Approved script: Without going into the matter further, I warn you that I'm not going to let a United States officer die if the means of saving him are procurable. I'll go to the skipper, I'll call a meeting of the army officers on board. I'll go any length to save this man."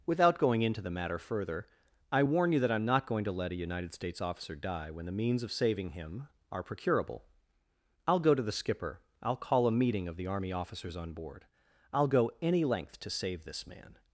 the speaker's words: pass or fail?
fail